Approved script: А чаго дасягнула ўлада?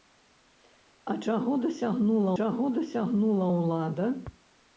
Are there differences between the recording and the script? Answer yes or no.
yes